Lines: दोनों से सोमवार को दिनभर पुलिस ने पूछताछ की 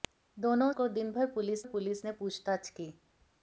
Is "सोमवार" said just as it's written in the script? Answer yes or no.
no